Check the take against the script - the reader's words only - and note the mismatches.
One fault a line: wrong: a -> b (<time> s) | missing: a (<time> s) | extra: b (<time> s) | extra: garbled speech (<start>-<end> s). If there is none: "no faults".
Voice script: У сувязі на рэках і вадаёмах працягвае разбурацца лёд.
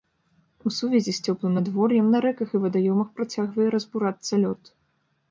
extra: з цёплым надвор'ем (1.2 s)